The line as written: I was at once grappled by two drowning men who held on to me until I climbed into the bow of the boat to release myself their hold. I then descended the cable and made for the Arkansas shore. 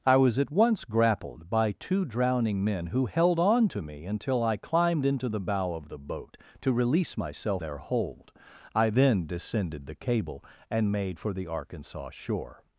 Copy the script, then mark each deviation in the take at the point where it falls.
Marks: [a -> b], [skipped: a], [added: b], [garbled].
I was at once grappled by two drowning men who held on to me until I climbed into the bow of the boat to release myself their hold. I then descended the cable and made for the Arkansas shore.